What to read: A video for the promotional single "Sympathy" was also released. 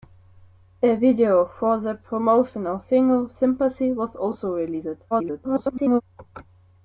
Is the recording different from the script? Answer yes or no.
yes